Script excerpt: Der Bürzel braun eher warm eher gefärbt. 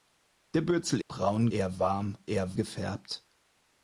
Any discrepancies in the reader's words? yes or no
no